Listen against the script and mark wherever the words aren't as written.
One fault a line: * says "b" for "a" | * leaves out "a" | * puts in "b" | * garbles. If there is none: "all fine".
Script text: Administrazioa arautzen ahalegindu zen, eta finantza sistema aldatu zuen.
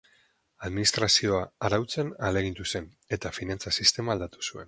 all fine